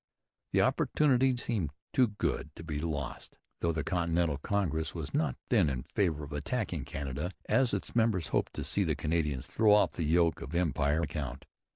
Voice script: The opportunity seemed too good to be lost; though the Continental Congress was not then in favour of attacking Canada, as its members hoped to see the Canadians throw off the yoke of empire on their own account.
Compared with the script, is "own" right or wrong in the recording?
wrong